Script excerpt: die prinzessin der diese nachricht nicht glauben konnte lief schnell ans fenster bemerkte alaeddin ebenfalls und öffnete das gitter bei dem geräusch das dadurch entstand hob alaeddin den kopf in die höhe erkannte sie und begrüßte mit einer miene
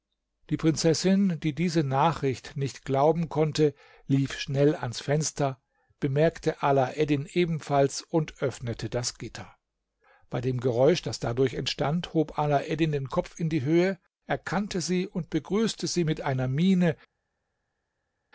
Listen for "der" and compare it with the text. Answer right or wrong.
wrong